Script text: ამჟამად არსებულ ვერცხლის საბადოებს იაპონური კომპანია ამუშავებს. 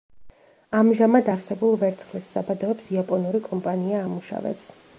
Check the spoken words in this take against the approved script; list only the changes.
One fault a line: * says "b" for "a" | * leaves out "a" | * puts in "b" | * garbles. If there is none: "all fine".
all fine